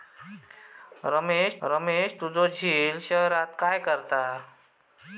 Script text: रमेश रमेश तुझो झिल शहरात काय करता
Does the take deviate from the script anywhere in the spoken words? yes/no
no